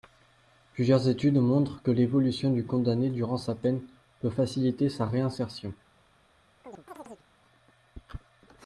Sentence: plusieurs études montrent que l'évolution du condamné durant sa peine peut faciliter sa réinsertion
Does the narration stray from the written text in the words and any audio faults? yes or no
yes